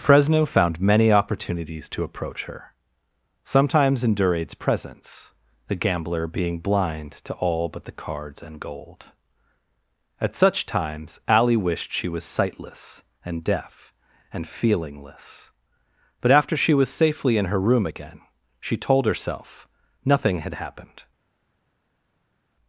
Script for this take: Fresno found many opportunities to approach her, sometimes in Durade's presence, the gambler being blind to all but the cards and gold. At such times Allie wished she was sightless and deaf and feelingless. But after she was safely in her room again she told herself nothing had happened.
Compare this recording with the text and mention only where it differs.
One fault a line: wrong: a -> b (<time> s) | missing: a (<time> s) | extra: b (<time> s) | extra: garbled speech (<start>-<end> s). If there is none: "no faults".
no faults